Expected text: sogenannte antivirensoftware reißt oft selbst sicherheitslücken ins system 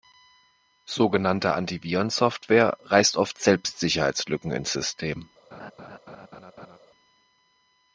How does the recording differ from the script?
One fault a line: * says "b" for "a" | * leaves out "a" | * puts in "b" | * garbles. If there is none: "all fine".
all fine